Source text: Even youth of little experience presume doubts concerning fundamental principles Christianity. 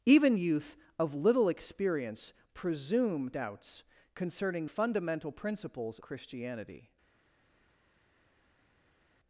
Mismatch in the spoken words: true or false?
false